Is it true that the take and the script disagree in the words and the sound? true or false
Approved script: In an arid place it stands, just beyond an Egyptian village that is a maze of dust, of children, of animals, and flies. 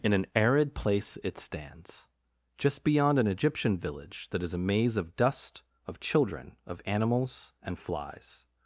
false